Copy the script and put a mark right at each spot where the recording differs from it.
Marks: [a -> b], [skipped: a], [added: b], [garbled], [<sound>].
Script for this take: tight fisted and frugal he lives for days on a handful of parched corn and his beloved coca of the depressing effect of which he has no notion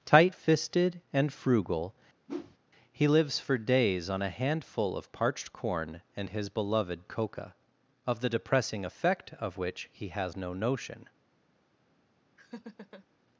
tight fisted and frugal [whoosh] he lives for days on a handful of parched corn and his beloved coca of the depressing effect of which he has no notion [laugh]